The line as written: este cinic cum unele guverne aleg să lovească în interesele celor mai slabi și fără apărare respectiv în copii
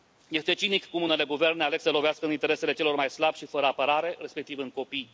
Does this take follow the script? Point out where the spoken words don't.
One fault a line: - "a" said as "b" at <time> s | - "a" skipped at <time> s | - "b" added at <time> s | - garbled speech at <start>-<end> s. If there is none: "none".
none